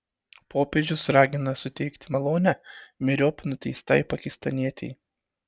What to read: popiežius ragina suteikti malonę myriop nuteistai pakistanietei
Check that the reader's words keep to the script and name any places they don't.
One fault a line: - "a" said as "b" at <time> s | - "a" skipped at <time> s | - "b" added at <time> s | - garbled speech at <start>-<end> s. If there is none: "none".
none